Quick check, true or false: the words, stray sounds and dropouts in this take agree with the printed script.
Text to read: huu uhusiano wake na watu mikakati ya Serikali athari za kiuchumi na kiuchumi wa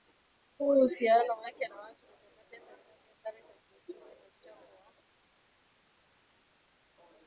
false